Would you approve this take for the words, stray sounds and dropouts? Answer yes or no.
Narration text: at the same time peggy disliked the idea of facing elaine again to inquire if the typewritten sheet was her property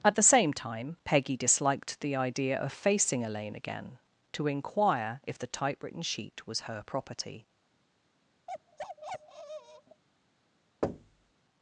no